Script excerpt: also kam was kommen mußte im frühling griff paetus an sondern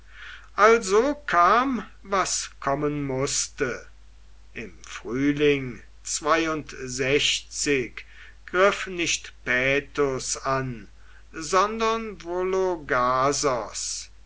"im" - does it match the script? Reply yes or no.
yes